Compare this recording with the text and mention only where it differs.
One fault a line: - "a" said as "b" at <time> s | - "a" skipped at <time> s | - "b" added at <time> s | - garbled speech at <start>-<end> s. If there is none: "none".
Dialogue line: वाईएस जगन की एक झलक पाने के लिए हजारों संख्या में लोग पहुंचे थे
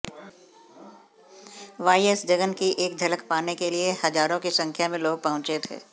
- "की" added at 4.4 s